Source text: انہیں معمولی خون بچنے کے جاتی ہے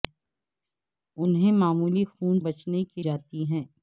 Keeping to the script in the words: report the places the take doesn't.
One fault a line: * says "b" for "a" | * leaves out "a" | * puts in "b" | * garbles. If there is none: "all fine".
all fine